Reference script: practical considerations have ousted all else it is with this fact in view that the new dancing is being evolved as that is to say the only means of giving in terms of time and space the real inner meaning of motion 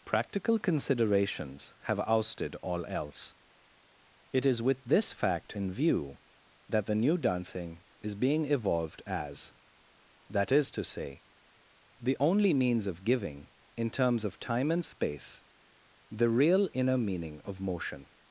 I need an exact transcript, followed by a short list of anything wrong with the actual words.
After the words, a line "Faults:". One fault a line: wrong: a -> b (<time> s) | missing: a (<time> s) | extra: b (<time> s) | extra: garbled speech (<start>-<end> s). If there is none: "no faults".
practical considerations have ousted all else it is with this fact in view that the new dancing is being evolved as that is to say the only means of giving in terms of time and space the real inner meaning of motion
Faults:
no faults